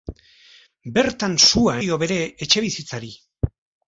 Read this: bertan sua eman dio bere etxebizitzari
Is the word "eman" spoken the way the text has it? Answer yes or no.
no